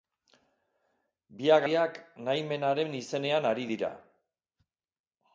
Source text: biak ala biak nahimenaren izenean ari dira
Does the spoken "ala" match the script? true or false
false